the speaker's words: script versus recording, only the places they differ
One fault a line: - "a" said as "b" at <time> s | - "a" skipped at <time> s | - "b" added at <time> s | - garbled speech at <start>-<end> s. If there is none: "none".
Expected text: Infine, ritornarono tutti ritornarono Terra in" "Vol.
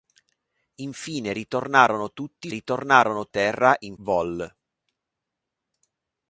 none